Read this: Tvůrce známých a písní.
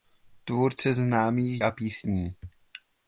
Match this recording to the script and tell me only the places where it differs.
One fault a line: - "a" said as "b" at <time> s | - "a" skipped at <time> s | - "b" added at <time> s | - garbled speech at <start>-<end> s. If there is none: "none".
none